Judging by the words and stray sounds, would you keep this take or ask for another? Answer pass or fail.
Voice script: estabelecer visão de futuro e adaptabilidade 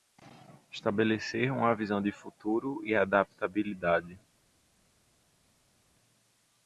fail